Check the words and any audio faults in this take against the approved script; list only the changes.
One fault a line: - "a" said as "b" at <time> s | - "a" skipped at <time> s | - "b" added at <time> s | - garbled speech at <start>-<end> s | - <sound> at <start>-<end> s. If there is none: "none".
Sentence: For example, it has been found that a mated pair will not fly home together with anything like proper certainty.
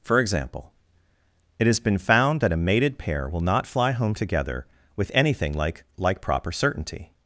- "like" added at 6.0 s